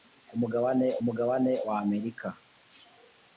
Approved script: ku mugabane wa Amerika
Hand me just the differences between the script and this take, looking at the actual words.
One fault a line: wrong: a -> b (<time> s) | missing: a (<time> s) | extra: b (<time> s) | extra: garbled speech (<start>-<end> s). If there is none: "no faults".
extra: mugabane (1.1 s)